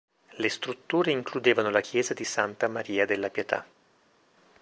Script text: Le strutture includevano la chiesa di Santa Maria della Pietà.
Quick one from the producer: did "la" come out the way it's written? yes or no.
yes